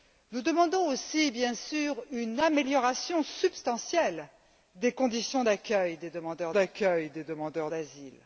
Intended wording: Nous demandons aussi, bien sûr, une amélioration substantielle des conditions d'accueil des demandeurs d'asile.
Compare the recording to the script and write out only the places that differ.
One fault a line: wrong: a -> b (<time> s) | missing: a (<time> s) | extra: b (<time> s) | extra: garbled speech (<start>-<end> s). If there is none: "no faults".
extra: d'accueil des demandeurs (6.5 s)